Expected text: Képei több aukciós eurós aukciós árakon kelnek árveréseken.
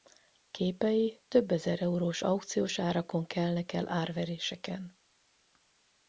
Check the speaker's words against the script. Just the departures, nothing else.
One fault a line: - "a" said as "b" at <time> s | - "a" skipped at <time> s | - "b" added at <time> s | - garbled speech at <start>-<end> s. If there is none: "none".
- "aukciós" said as "ezer" at 1.5 s
- "el" added at 3.7 s